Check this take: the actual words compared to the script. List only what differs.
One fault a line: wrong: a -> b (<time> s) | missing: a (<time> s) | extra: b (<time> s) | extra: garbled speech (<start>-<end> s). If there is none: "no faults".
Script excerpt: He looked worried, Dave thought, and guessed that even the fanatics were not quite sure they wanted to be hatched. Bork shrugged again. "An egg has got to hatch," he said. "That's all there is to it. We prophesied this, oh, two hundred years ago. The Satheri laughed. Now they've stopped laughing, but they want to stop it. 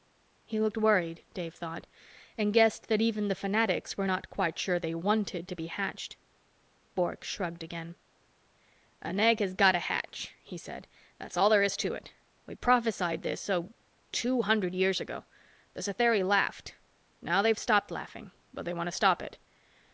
no faults